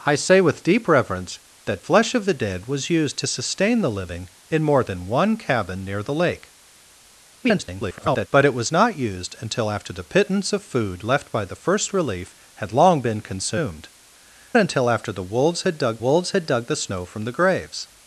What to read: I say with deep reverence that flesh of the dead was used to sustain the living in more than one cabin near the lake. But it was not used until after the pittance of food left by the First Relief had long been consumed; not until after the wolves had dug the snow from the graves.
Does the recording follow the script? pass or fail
fail